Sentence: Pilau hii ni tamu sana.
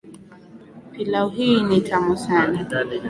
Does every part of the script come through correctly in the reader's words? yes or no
yes